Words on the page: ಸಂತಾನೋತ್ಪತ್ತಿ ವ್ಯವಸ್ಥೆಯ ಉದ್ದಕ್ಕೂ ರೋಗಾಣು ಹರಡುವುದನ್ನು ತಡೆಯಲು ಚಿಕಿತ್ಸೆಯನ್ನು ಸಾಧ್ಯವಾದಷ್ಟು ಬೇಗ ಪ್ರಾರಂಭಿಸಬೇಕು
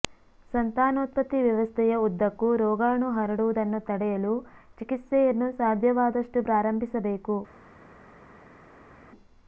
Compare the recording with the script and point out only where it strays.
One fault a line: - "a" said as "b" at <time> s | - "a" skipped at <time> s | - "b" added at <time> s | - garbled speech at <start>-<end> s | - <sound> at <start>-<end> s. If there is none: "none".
- "ಬೇಗ" skipped at 6.4 s